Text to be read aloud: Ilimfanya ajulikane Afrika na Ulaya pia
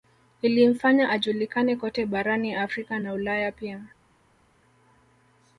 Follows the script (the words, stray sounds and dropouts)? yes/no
no